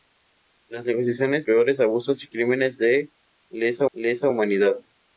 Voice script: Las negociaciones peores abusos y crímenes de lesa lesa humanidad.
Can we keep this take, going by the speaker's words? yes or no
yes